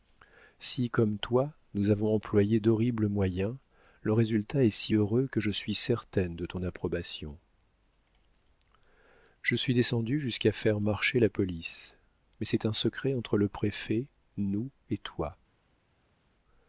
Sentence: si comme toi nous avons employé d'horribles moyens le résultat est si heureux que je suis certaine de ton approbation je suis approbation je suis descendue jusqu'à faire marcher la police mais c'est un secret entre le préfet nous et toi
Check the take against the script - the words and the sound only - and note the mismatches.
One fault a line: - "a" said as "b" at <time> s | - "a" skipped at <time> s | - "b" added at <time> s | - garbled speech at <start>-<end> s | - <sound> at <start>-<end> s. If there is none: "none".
- "approbation je suis" skipped at 9.7 s